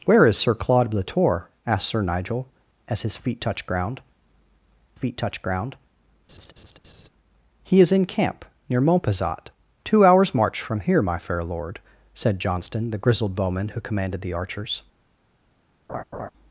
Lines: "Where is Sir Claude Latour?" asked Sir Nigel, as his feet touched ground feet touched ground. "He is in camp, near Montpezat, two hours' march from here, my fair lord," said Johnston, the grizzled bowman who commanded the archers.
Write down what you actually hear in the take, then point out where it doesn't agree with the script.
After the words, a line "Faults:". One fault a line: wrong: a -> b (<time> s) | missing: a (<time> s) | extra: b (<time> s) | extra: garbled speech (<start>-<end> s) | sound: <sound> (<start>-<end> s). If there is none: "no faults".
"Where is Sir Claude Latour?" asked Sir Nigel, as his feet touched ground feet touched ground. "He is in camp, near Montpezat, two hours' march from here, my fair lord," said Johnston, the grizzled bowman who commanded the archers.
Faults:
sound: laugh (6.3-7.1 s)
sound: laugh (15.9-16.3 s)